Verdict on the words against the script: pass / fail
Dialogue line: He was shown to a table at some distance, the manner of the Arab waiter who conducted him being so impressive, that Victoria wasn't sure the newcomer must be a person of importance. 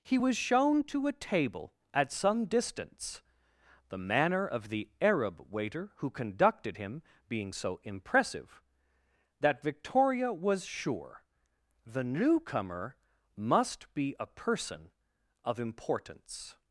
fail